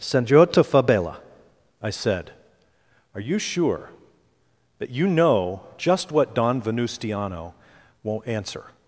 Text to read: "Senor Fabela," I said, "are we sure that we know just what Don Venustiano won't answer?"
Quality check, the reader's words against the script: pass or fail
fail